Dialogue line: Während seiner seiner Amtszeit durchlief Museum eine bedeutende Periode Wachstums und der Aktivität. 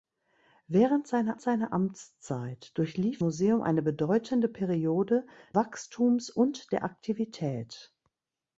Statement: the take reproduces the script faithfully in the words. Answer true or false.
true